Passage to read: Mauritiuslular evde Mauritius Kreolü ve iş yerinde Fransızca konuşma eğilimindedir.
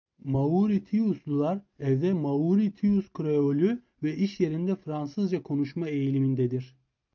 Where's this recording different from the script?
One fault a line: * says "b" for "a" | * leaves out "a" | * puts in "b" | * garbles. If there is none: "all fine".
all fine